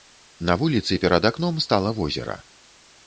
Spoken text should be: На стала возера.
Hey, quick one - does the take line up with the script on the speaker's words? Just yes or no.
no